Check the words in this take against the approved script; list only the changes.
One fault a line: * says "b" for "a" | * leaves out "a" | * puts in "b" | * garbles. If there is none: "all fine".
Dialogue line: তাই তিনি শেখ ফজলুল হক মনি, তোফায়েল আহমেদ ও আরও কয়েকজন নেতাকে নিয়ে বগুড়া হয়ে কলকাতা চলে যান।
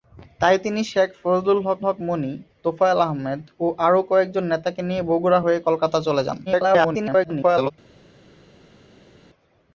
* puts in "হক"
* garbles